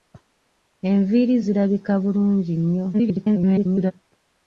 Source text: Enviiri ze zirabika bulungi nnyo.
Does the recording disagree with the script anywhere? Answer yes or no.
yes